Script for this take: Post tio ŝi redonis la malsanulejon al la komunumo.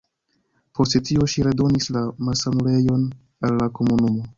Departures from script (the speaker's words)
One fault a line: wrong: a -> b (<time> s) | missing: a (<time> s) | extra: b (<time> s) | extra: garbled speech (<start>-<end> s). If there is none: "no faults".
no faults